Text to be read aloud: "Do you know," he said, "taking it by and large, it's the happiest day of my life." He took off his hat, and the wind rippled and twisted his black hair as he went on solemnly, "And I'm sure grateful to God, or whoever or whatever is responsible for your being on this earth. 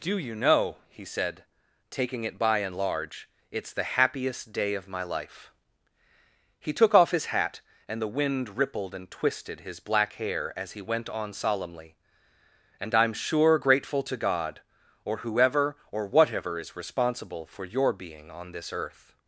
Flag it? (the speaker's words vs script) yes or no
no